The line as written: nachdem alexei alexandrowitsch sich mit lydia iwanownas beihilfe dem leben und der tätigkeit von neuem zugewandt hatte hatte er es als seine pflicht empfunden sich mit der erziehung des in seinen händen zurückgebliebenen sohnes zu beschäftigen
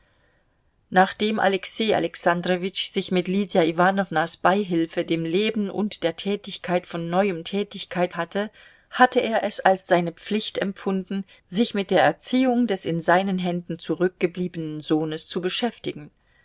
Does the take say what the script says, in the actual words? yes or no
no